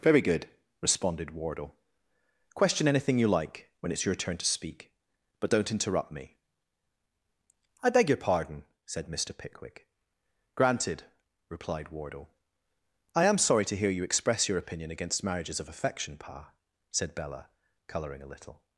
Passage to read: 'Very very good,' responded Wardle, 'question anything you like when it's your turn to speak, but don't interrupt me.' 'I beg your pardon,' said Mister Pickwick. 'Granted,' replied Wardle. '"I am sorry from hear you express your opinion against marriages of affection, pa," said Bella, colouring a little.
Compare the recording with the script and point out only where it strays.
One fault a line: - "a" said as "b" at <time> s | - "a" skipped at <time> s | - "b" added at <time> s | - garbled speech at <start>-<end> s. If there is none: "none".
- "very" skipped at 0.2 s
- "from" said as "to" at 13.6 s